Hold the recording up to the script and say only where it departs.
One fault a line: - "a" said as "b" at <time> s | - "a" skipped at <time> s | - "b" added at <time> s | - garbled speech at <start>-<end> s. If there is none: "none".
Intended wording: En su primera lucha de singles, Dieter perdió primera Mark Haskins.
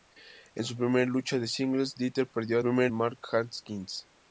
none